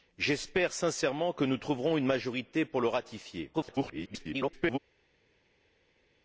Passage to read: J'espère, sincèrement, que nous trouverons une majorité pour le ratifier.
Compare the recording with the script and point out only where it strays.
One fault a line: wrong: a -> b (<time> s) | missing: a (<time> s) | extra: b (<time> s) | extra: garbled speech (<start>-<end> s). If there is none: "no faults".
extra: garbled speech (3.5-4.8 s)